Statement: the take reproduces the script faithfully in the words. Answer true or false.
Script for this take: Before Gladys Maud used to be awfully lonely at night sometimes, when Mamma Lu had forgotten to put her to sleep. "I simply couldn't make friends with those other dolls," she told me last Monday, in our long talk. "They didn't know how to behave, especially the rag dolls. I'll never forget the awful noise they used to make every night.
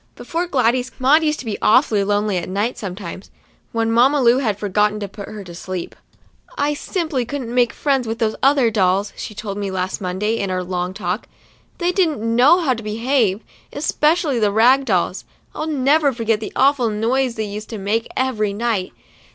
true